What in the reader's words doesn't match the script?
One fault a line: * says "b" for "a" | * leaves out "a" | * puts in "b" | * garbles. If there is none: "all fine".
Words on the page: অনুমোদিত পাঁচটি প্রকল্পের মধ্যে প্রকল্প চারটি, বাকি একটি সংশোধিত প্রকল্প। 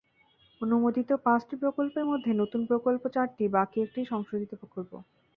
* puts in "নতুন"